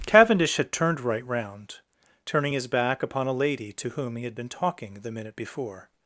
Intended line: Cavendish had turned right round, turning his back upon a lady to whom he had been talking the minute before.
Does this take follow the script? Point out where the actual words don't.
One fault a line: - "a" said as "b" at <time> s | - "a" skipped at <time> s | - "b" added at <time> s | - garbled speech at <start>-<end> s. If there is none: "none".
none